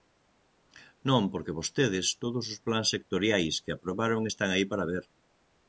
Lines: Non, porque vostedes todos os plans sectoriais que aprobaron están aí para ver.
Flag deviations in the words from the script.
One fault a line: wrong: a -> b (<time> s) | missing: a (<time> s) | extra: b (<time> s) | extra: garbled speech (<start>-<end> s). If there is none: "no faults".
no faults